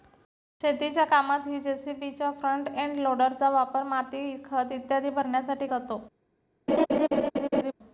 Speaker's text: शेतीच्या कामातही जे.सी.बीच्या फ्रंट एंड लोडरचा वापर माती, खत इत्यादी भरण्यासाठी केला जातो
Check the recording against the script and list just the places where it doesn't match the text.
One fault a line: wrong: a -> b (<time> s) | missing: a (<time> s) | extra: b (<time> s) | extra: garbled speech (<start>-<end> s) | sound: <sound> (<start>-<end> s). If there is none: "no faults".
missing: केला (5.7 s)
sound: laugh (6.7-7.7 s)